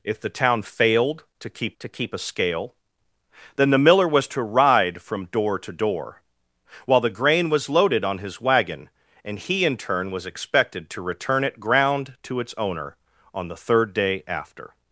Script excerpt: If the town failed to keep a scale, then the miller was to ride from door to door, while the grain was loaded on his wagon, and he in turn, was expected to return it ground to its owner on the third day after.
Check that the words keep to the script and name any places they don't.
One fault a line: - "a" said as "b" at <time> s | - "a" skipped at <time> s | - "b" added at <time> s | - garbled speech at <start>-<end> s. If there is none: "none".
- "to keep" added at 1.8 s